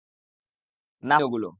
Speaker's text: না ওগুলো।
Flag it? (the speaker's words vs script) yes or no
no